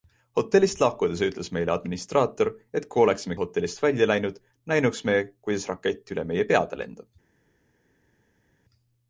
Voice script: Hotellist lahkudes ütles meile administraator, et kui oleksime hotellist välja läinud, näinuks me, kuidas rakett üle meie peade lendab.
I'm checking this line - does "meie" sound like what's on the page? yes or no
yes